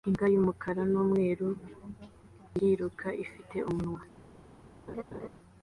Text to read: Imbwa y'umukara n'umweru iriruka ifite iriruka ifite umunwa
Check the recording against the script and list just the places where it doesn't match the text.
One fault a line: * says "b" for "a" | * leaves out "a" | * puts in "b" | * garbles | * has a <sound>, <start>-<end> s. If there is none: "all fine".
* leaves out "iriruka ifite"
* has a laugh, 4.9-5.3 s